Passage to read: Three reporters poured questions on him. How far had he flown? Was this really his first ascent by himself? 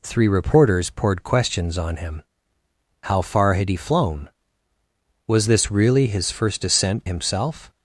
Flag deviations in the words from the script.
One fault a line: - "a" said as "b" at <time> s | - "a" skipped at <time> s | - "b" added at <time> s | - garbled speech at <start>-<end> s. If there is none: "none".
- "by" skipped at 7.1 s